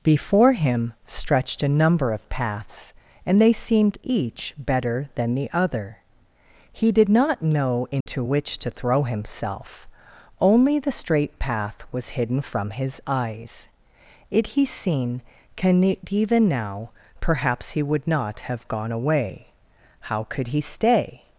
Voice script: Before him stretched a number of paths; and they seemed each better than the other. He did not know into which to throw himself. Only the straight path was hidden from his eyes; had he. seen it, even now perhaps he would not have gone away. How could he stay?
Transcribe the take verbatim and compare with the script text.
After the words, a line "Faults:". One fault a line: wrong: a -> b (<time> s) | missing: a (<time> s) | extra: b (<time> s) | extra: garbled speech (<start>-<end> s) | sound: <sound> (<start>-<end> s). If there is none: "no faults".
Before him stretched a number of paths; and they seemed each better than the other. He did not know into which to throw himself. Only the straight path was hidden from his eyes; it he. seen can it, even now perhaps he would not have gone away. How could he stay?
Faults:
sound: dropout (8.0-8.1 s)
wrong: had -> it (14.3 s)
extra: can (15.6 s)